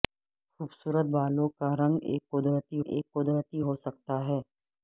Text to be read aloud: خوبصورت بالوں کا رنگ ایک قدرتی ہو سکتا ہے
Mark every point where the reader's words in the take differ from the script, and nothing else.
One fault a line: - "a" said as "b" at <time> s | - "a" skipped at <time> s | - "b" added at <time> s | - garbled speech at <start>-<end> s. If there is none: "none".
- "ایک قدرتی" added at 2.9 s